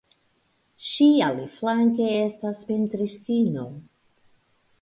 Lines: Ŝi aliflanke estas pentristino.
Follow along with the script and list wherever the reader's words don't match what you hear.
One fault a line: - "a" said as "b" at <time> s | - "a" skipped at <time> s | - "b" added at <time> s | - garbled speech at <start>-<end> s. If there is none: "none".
none